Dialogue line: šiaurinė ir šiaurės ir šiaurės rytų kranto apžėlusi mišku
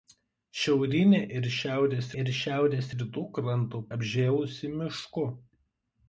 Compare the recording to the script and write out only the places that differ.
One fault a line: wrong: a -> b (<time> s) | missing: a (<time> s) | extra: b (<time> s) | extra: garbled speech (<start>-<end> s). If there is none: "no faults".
no faults